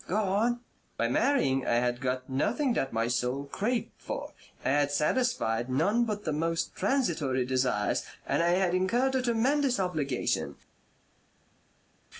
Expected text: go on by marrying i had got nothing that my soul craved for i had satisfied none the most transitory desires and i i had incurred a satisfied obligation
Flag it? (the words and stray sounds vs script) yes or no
yes